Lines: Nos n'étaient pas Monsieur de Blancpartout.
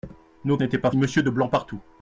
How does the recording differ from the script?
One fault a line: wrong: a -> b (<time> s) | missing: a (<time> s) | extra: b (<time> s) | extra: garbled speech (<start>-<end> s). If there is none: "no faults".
no faults